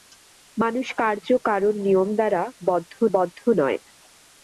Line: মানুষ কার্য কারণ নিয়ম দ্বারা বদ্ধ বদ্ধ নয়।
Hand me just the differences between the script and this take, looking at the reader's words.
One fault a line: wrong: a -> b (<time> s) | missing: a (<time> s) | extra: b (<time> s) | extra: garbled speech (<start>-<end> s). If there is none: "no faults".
no faults